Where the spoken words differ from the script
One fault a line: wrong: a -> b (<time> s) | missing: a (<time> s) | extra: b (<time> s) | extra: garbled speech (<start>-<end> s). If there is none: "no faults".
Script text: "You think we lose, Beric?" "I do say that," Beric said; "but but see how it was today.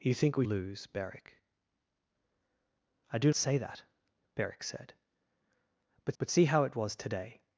no faults